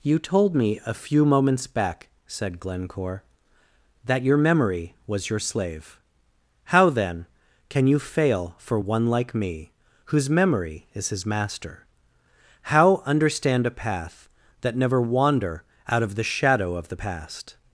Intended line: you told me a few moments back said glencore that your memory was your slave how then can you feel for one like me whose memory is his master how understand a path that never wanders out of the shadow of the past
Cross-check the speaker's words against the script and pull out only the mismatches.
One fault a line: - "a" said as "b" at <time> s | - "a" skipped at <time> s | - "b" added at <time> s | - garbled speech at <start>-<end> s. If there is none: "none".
- "feel" said as "fail" at 8.0 s
- "wanders" said as "wander" at 15.0 s